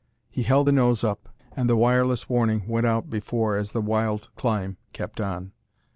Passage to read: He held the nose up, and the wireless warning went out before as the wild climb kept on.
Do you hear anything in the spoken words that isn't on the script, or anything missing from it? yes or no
no